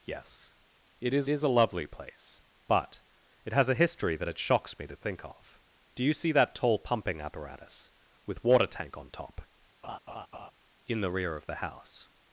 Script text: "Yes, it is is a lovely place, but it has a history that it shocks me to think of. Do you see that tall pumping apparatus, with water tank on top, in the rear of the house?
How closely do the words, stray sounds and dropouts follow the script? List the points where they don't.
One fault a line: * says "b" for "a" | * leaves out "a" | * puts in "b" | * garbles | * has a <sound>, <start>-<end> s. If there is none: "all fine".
* has a laugh, 9.8-10.5 s